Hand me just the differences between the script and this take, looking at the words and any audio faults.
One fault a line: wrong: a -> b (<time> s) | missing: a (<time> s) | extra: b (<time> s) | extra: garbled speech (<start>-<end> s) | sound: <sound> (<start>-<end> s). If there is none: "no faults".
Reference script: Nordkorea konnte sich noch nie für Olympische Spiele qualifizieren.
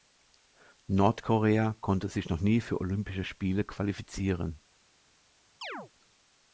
sound: chirp (5.6-5.9 s)